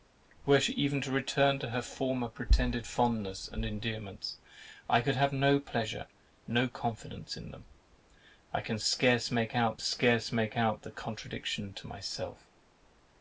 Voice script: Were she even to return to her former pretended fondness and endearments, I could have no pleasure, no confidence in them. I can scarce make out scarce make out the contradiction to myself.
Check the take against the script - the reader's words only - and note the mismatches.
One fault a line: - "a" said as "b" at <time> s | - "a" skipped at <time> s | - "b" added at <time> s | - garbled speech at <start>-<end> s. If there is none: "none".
none